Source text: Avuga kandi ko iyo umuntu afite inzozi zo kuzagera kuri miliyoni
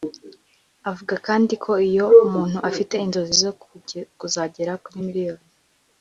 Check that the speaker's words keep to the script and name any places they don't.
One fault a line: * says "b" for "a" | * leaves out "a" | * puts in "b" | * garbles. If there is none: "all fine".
all fine